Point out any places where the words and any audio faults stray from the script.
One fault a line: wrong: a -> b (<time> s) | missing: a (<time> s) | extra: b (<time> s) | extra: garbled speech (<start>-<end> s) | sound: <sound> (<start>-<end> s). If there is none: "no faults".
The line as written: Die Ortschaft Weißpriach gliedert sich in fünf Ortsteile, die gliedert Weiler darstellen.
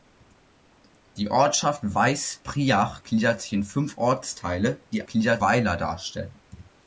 no faults